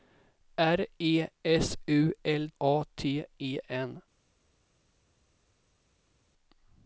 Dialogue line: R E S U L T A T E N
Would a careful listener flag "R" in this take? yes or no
no